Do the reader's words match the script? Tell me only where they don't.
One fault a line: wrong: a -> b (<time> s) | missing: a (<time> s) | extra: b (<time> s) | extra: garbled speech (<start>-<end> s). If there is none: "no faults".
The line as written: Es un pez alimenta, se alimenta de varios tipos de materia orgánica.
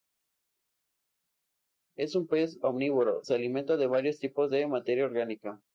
wrong: alimenta -> omnívoro (2.6 s)